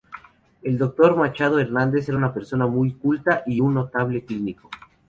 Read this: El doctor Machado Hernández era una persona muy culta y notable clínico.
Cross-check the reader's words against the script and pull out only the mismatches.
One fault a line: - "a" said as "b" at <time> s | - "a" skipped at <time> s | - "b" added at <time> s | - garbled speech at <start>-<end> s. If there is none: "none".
- "un" added at 3.6 s